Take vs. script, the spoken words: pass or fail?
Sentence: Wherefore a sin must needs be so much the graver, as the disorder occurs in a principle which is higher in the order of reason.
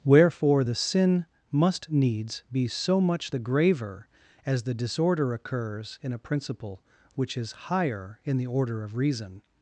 fail